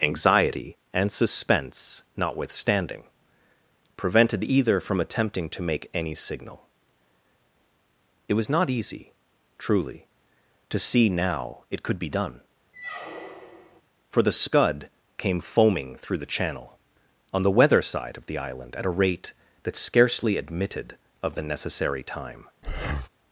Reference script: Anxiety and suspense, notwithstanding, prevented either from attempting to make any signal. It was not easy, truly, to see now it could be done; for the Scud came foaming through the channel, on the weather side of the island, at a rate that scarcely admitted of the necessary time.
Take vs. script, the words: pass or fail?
pass